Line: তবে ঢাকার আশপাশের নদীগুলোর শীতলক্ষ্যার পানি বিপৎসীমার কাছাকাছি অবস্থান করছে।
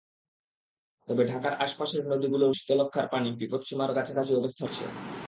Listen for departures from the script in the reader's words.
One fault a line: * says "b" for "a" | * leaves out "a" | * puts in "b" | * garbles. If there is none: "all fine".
all fine